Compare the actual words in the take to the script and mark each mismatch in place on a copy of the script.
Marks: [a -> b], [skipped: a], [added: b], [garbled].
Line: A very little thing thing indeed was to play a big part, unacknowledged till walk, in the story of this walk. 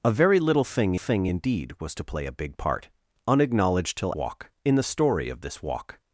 A very little thing thing indeed was to play a big part, unacknowledged till walk, in the story of this walk.